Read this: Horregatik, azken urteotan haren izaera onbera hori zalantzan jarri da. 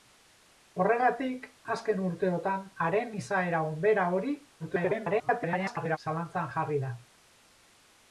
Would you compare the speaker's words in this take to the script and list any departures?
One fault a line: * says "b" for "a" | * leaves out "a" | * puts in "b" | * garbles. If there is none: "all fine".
* garbles